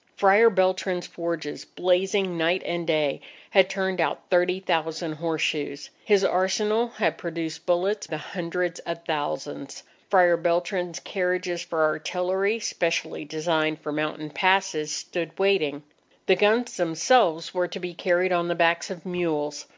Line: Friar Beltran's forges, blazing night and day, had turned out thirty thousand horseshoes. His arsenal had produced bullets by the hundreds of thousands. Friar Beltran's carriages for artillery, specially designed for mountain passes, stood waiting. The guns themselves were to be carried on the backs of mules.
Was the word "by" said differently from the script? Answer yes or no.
yes